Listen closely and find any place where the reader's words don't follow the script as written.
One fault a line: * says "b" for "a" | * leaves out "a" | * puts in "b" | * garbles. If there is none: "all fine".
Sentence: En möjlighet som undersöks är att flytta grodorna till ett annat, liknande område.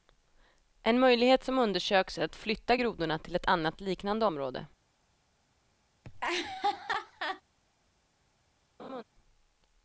all fine